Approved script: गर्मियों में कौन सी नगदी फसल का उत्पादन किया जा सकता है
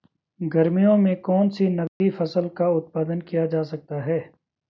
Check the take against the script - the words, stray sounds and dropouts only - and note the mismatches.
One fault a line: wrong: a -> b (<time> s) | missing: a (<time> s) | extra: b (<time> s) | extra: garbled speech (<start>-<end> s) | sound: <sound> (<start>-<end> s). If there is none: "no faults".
sound: dropout (1.9-2.0 s)